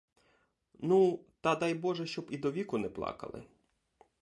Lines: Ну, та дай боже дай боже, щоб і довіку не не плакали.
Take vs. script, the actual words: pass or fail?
fail